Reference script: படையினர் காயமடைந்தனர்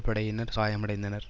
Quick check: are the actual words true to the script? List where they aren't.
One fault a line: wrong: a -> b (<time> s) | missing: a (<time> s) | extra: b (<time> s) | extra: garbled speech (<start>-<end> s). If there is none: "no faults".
no faults